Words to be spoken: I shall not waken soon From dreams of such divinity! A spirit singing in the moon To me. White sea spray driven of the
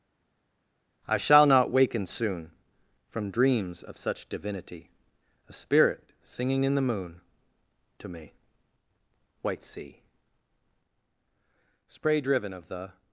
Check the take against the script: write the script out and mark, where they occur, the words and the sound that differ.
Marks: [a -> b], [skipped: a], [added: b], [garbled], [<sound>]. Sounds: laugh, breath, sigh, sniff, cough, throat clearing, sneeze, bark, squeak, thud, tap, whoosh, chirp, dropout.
I shall not waken soon From dreams of such divinity! A spirit singing in the moon To me. White sea spray driven of the